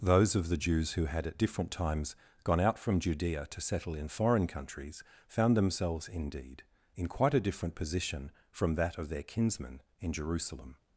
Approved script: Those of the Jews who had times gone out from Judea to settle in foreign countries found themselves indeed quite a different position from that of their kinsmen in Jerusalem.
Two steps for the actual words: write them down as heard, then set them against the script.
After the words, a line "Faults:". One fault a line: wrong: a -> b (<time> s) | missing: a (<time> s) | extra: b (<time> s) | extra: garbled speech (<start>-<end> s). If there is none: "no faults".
Those of the Jews who had at different times gone out from Judea to settle in foreign countries found themselves indeed in quite a different position from that of their kinsmen in Jerusalem.
Faults:
extra: at different (1.3 s)
extra: in (6.9 s)